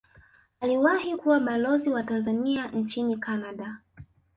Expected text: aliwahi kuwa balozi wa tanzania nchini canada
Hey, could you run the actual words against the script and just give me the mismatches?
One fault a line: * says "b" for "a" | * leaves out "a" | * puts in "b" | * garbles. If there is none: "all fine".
all fine